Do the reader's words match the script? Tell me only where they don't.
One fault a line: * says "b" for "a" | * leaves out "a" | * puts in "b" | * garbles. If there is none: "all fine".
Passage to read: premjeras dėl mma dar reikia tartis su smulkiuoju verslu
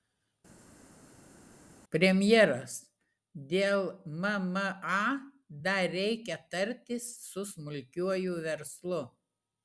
all fine